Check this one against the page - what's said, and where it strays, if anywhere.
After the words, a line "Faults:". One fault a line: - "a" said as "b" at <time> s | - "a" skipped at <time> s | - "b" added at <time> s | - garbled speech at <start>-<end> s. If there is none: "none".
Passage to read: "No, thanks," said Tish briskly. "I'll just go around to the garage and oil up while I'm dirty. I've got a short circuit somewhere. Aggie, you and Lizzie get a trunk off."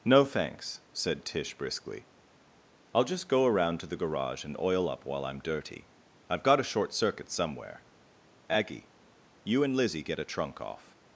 "No, thanks," said Tish briskly. "I'll just go around to the garage and oil up while I'm dirty. I've got a short circuit somewhere. Aggie, you and Lizzie get a trunk off."
Faults:
none